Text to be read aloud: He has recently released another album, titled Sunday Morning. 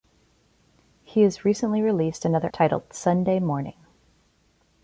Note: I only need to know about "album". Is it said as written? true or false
false